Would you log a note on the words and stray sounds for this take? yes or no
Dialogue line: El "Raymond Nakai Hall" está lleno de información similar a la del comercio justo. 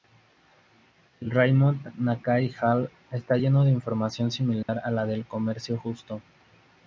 yes